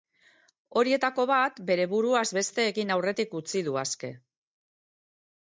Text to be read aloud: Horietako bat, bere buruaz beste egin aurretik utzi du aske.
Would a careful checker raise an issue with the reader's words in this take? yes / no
no